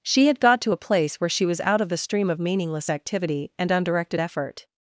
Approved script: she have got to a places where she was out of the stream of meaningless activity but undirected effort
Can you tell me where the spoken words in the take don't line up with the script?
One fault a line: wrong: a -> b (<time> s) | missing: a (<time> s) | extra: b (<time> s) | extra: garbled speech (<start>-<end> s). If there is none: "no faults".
wrong: have -> had (0.3 s)
wrong: places -> place (0.8 s)
wrong: but -> and (3.6 s)